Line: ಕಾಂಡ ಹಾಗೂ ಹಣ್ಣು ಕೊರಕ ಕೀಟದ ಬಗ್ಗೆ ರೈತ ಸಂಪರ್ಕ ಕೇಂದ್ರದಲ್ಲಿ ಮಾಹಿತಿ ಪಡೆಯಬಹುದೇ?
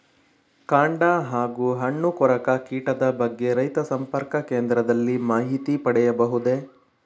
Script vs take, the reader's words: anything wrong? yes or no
no